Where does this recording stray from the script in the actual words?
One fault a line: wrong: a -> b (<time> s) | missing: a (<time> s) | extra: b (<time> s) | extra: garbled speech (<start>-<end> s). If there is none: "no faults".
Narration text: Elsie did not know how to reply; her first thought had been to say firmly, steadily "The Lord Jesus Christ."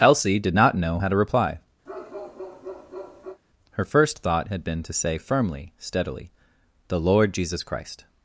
no faults